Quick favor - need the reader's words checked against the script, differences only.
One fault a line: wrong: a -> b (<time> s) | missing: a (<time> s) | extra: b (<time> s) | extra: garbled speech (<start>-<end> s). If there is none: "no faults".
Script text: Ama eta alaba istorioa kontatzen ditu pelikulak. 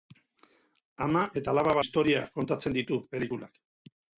no faults